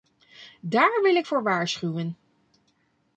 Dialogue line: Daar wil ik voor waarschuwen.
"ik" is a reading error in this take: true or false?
false